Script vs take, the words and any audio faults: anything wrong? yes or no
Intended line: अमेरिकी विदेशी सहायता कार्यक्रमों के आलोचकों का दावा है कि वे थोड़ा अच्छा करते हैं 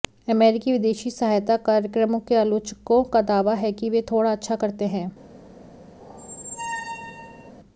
yes